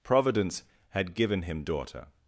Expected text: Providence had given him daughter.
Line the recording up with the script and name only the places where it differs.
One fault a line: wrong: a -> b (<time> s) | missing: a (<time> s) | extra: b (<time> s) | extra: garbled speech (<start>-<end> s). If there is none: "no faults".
no faults